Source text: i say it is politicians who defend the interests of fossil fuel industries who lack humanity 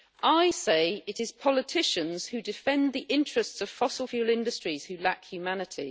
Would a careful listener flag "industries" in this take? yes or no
no